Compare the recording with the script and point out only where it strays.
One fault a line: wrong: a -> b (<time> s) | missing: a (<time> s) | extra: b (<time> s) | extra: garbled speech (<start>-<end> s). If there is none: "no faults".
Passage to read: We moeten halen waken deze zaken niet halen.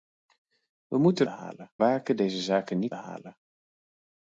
no faults